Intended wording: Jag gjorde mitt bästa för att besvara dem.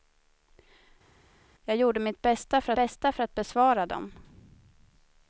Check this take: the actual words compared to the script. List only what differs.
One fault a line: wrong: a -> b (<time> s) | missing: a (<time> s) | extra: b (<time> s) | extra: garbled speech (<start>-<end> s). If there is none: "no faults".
extra: bästa för (2.7 s)